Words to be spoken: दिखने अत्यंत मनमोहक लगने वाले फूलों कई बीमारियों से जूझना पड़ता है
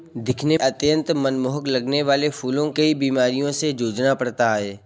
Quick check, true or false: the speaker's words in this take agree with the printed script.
true